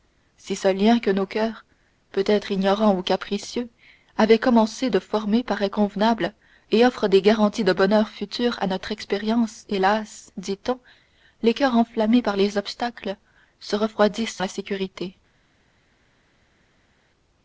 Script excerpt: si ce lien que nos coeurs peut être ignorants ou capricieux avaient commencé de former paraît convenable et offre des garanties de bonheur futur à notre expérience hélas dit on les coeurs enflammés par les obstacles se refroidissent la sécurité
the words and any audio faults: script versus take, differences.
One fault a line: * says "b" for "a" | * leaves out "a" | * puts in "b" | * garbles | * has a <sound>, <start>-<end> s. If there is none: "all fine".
all fine